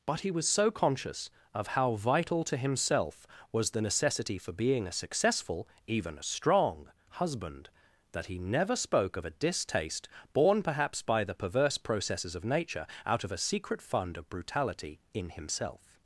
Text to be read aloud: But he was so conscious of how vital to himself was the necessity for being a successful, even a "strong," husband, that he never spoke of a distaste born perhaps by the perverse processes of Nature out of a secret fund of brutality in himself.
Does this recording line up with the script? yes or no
yes